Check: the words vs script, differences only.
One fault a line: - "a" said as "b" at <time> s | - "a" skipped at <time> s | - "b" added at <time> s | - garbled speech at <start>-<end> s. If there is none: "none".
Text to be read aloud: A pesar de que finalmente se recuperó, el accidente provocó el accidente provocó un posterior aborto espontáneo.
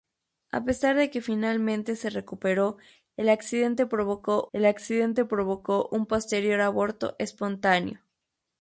none